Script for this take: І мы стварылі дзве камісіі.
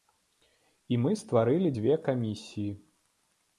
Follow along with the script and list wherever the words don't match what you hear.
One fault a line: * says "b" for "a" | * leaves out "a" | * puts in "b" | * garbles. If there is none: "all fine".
all fine